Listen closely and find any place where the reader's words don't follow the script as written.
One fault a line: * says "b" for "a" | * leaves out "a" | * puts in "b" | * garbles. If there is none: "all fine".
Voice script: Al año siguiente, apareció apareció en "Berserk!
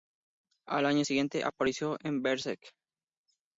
* leaves out "apareció"